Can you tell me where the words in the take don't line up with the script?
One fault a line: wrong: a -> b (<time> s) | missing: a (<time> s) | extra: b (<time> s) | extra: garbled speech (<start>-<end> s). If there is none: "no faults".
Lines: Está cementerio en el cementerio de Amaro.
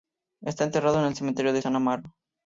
wrong: cementerio -> enterrado (0.6 s)
extra: San (1.6 s)